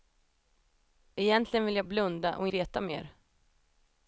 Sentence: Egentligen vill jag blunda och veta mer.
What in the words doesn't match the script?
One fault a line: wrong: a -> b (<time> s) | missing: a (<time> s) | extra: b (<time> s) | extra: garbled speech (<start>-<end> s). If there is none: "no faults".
no faults